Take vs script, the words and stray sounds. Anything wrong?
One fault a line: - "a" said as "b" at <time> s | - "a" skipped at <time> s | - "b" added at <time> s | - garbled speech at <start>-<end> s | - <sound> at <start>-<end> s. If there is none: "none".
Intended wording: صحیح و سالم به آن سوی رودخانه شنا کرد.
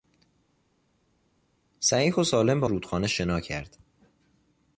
- "آن سوی" skipped at 2.7 s